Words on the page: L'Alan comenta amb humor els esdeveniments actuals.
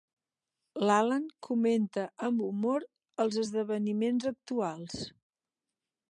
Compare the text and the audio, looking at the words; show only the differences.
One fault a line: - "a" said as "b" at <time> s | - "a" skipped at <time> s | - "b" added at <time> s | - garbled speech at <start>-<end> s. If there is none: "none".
none